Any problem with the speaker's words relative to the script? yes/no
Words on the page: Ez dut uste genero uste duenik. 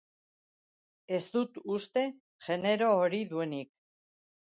yes